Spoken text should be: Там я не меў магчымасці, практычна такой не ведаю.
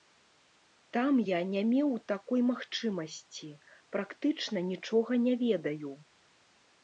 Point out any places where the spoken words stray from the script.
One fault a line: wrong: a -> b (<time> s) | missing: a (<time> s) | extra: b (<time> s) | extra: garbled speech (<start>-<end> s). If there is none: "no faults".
extra: такой (2.1 s)
wrong: такой -> нічога (4.7 s)